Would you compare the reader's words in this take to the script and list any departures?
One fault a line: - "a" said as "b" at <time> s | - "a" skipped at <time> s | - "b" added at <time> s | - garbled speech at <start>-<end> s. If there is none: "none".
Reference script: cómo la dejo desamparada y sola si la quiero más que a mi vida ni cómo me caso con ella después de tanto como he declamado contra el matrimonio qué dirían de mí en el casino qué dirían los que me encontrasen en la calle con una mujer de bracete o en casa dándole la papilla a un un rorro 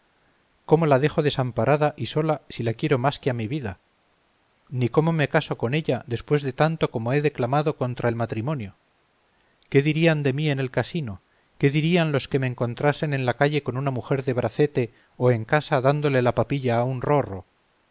- "un" skipped at 17.0 s